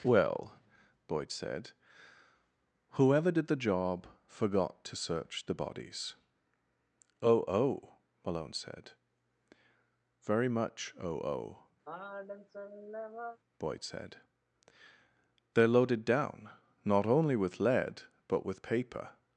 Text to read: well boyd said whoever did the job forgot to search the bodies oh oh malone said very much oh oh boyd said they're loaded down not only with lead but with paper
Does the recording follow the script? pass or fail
pass